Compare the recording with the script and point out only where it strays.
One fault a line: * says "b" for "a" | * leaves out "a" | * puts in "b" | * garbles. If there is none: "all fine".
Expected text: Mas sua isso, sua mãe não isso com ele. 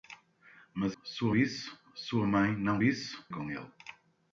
all fine